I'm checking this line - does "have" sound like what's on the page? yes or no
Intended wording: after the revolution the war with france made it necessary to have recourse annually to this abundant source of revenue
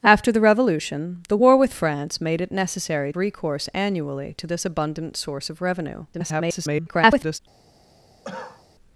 no